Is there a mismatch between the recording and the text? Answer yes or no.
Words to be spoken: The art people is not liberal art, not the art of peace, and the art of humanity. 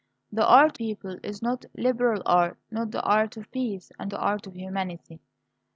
no